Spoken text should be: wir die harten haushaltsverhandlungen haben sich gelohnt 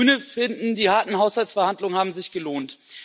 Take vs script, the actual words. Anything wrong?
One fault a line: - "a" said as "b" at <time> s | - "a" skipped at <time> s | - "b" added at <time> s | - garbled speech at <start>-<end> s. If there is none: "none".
- "grüne finden" added at 0.1 s